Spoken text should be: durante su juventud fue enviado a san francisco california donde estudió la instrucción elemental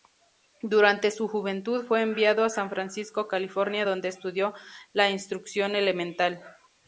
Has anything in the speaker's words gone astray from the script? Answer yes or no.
no